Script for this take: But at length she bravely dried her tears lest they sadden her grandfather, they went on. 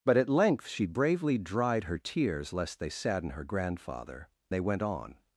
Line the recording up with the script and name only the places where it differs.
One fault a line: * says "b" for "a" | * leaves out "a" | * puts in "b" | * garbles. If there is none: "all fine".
all fine